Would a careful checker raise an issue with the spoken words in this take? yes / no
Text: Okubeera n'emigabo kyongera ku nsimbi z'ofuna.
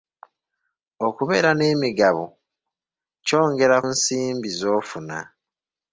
yes